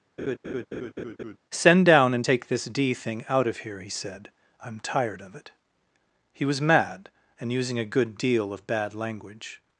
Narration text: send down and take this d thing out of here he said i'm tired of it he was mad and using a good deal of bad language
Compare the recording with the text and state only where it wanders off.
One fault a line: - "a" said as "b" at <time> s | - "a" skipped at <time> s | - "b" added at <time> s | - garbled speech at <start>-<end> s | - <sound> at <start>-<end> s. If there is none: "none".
- laugh at 0.2-1.4 s